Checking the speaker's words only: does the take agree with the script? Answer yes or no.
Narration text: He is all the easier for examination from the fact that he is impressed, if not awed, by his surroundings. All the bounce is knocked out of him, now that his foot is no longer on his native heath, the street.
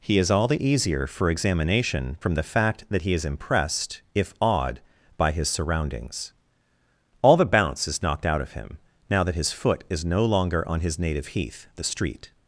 no